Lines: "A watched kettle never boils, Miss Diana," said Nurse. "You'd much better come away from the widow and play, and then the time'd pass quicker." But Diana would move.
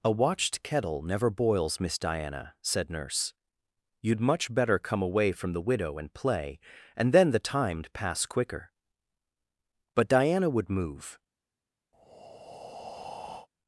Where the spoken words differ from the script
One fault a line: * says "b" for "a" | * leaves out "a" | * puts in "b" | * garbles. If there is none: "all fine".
all fine